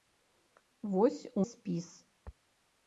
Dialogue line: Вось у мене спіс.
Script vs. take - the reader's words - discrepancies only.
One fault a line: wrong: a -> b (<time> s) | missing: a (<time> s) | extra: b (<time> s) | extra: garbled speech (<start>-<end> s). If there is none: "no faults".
missing: мене (1.4 s)